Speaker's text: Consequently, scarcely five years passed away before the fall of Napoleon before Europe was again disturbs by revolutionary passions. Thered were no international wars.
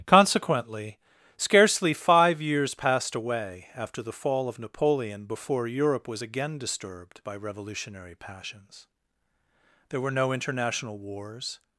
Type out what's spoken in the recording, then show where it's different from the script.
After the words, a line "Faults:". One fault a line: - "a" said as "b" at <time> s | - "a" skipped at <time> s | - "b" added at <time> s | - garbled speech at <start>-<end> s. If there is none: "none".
Consequently, scarcely five years passed away after the fall of Napoleon before Europe was again disturbed by revolutionary passions. There were no international wars.
Faults:
- "before" said as "after" at 3.8 s
- "disturbs" said as "disturbed" at 6.6 s
- "Thered" said as "There" at 9.9 s